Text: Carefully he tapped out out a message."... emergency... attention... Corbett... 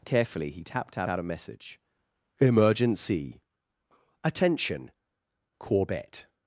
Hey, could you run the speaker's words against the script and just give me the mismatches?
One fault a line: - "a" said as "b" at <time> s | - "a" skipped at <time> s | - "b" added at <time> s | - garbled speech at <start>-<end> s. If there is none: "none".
none